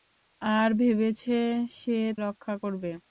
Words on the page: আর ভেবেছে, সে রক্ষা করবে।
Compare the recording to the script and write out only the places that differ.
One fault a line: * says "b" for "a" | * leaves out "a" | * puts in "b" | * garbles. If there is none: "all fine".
all fine